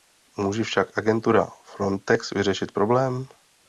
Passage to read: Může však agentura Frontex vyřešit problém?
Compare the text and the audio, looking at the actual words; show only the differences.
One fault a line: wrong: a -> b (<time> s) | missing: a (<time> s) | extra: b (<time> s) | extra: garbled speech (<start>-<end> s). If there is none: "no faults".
no faults